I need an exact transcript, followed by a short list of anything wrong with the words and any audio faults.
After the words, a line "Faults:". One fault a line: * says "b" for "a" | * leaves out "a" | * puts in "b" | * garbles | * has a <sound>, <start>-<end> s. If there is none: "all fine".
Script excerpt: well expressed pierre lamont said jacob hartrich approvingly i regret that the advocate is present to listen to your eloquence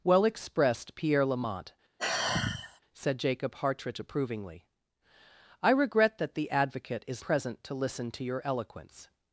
well expressed pierre lamont said jacob hartrich approvingly i regret that the advocate is present to listen to your eloquence
Faults:
* has a sigh, 2.0-2.8 s